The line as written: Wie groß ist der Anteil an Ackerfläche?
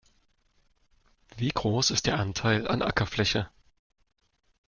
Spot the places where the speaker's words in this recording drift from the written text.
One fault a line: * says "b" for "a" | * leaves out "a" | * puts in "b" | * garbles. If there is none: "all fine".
all fine